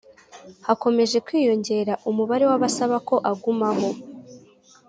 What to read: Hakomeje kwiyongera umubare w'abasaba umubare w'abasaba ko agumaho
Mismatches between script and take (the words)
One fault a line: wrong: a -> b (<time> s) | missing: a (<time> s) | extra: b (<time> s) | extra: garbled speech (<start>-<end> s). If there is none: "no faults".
missing: umubare w'abasaba (3.0 s)